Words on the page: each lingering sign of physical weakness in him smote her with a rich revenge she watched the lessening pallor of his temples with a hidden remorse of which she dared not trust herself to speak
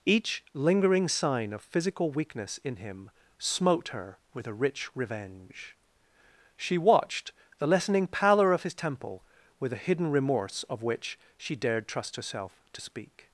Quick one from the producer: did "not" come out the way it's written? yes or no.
no